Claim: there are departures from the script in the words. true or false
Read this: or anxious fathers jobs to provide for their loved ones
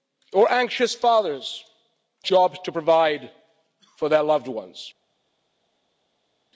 false